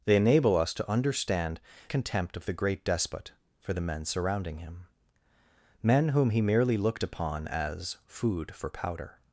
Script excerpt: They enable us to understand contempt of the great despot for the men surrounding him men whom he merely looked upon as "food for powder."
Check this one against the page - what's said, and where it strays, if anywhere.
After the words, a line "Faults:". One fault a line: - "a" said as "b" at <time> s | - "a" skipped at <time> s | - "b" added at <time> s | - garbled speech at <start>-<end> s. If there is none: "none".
They enable us to understand contempt of the great despot for the men surrounding him men whom he merely looked upon as "food for powder."
Faults:
none